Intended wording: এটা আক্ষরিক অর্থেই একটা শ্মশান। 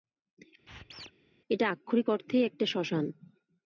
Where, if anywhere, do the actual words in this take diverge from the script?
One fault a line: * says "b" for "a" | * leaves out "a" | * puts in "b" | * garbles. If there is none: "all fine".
all fine